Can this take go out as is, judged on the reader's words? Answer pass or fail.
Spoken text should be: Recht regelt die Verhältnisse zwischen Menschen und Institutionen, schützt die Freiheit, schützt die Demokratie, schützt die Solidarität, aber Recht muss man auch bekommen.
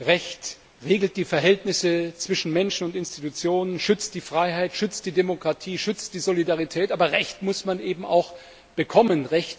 fail